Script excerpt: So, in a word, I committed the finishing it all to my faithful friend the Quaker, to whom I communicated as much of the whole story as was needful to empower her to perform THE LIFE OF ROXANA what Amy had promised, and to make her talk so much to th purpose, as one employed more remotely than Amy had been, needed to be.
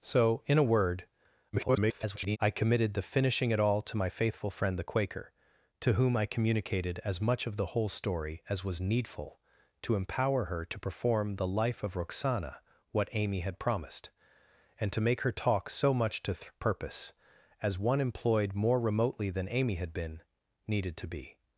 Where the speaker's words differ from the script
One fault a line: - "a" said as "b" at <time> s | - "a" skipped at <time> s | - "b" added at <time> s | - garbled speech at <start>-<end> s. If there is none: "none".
- garbled speech at 1.5-2.4 s